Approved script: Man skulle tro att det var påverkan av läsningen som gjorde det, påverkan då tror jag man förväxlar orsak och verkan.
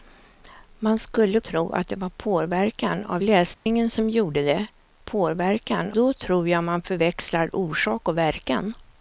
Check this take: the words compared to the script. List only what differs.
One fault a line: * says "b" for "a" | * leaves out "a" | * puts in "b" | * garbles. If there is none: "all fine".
all fine